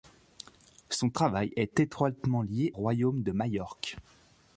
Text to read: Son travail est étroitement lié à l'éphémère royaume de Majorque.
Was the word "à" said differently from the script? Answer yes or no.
yes